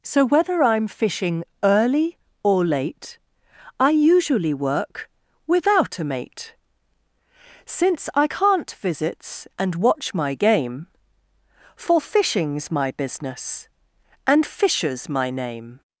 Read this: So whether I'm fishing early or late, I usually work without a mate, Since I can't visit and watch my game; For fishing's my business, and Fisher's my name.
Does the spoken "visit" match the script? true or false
false